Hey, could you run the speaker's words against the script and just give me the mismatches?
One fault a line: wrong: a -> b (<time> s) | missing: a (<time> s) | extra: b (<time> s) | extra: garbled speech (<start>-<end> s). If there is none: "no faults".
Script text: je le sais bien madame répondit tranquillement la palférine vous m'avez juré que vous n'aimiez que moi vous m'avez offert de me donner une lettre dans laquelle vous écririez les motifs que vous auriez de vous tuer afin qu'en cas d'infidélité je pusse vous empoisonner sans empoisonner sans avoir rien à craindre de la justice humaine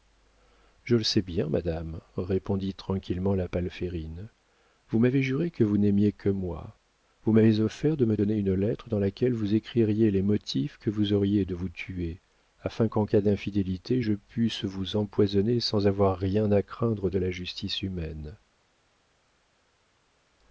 missing: empoisonner sans (15.9 s)